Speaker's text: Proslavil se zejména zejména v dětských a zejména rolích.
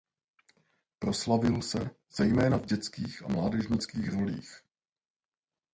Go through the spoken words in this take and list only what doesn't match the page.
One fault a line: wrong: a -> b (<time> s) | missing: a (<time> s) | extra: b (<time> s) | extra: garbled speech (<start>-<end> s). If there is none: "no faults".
missing: zejména (2.6 s)
wrong: zejména -> mládežnických (3.3 s)